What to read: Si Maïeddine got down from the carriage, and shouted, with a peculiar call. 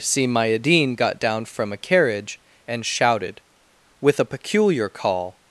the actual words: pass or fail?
fail